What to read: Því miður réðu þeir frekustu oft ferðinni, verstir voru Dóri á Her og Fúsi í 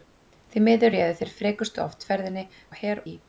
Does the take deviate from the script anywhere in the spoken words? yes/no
yes